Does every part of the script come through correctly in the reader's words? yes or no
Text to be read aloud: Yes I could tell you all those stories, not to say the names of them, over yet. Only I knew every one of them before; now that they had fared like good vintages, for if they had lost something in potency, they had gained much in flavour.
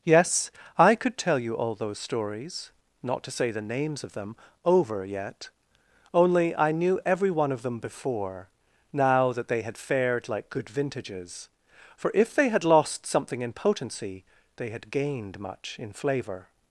yes